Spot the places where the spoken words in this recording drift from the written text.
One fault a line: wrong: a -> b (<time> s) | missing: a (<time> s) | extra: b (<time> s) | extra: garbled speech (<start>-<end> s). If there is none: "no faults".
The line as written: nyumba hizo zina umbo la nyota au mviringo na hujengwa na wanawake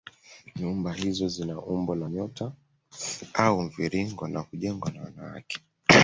no faults